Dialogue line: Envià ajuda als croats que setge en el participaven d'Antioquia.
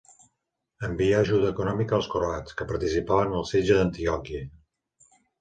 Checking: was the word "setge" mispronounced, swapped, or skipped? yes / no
yes